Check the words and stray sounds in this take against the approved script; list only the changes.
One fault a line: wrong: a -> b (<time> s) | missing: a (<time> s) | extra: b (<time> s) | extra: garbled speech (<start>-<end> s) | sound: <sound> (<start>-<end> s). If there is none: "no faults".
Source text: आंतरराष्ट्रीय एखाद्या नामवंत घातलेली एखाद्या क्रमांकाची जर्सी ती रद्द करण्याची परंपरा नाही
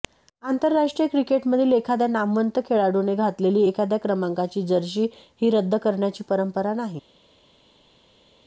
extra: क्रिकेटमधील (1.1 s)
extra: खेळाडूने (2.6 s)
wrong: ती -> ही (5.4 s)